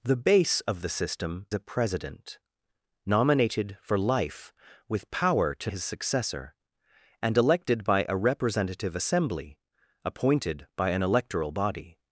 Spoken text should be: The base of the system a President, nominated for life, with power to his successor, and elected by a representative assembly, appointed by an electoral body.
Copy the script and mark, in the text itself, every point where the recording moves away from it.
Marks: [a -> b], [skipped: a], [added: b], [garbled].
The base of the system a President, nominated for life, with power to his successor, and elected by a representative assembly, appointed by an electoral body.